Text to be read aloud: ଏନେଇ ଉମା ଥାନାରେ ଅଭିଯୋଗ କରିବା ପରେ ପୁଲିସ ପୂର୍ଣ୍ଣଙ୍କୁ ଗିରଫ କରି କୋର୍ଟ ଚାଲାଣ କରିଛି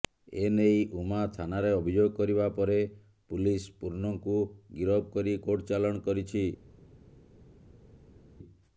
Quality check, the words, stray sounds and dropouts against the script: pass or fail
pass